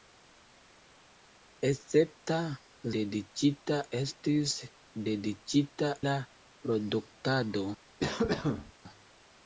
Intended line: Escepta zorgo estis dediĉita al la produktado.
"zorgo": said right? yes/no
no